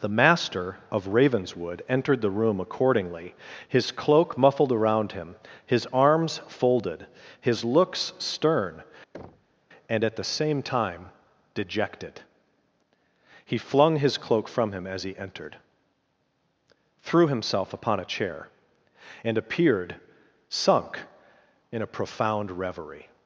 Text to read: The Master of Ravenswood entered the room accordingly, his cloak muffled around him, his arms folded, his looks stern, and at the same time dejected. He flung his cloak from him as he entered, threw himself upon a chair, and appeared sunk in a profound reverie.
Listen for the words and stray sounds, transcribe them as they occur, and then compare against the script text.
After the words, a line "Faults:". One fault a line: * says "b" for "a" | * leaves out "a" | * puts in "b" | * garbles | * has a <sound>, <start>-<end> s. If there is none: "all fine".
The Master of Ravenswood entered the room accordingly, his cloak muffled around him, his arms folded, his looks stern, and at the same time dejected. He flung his cloak from him as he entered, threw himself upon a chair, and appeared sunk in a profound reverie.
Faults:
* has a thud, 9.1-9.6 s